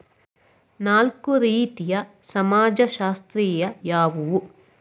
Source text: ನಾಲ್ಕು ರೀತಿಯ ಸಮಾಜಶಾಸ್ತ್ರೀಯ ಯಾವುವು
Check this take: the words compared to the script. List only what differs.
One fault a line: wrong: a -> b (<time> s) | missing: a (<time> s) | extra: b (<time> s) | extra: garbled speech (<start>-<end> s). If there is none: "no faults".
no faults